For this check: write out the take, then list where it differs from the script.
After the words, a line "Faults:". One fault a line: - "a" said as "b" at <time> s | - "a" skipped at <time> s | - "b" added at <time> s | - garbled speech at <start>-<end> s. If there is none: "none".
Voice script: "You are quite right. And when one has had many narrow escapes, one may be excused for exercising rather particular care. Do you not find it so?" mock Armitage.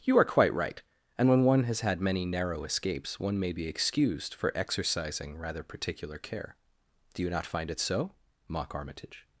"You are quite right. And when one has had many narrow escapes, one may be excused for exercising rather particular care. Do you not find it so?" mock Armitage.
Faults:
none